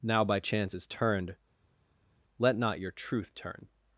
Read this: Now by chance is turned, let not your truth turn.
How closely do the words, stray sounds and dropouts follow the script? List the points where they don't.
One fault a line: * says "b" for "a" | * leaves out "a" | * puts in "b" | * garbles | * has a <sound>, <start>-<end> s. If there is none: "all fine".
all fine